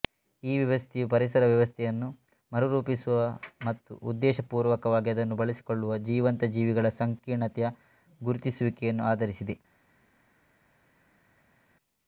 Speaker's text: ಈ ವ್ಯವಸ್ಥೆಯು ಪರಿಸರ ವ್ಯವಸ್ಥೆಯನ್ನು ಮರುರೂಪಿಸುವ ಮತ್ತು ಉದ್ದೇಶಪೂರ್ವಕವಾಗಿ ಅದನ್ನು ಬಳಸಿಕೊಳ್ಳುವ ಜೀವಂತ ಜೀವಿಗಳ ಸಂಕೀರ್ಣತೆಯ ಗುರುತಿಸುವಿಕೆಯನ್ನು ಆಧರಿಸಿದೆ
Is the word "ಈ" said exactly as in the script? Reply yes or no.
yes